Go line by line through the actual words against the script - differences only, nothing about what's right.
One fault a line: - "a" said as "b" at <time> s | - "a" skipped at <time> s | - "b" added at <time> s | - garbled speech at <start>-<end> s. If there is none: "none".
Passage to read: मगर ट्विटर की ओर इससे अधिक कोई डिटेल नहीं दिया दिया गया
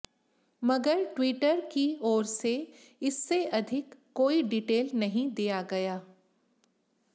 - "से" added at 2.2 s
- "दिया" skipped at 5.6 s